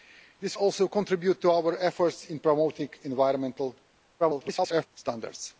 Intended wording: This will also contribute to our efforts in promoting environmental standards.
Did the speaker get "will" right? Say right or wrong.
wrong